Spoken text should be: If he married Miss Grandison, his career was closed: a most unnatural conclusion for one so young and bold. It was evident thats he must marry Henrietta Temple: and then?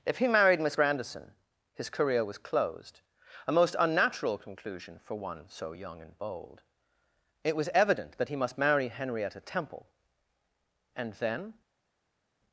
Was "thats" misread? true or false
true